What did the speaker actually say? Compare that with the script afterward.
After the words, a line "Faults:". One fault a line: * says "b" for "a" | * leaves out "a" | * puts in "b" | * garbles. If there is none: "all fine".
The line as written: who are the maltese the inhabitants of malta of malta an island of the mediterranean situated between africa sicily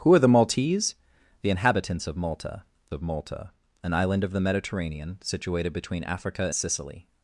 who are the maltese the inhabitants of malta of malta an island of the mediterranean situated between africa sicily
Faults:
all fine